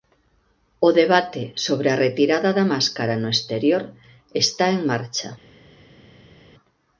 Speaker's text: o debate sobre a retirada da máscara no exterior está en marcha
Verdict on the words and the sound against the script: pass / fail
pass